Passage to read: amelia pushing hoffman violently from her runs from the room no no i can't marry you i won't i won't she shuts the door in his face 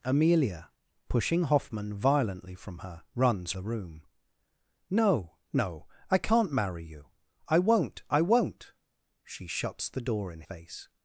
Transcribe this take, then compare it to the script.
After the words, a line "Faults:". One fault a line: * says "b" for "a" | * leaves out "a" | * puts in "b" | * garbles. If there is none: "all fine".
amelia pushing hoffman violently from her runs the room no no i can't marry you i won't i won't she shuts the door in face
Faults:
* leaves out "from"
* leaves out "his"